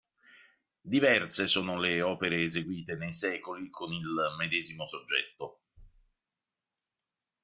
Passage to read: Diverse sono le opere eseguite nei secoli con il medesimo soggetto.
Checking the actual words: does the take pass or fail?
pass